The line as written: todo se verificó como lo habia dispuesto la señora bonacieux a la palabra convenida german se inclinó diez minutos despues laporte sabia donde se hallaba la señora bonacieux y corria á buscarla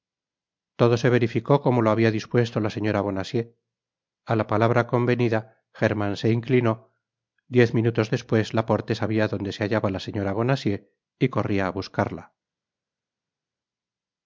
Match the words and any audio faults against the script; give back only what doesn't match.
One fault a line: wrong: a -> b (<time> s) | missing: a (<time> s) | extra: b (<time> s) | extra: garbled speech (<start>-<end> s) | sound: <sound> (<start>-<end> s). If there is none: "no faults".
no faults